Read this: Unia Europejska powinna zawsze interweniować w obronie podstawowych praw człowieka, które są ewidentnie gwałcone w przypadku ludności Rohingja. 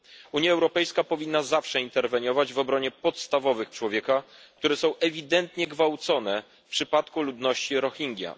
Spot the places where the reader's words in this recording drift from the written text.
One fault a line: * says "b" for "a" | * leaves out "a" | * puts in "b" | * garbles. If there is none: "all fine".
* leaves out "praw"